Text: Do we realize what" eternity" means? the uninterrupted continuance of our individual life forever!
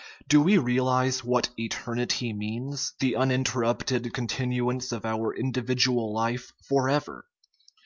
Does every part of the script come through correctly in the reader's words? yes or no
yes